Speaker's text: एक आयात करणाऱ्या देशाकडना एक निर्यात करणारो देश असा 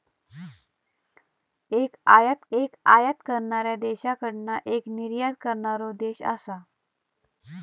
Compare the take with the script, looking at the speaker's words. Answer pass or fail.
fail